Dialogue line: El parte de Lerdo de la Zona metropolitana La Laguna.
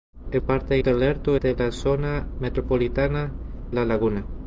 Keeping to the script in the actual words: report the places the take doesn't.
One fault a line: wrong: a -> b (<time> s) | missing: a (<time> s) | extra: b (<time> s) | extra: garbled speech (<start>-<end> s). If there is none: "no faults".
no faults